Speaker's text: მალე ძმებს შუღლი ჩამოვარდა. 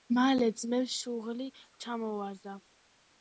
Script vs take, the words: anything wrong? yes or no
no